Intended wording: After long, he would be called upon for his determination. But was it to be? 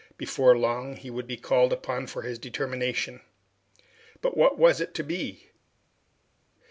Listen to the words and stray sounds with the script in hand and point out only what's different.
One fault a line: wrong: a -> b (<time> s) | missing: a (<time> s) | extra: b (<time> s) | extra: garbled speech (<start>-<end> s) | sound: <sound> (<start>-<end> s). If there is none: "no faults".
wrong: After -> Before (0.2 s)
extra: what (4.4 s)